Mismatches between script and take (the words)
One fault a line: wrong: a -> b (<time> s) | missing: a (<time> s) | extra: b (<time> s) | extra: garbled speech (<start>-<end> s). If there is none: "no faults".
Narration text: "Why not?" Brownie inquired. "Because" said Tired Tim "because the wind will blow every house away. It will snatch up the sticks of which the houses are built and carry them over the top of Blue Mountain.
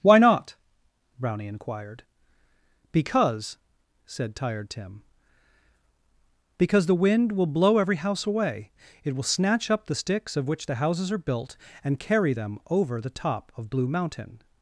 no faults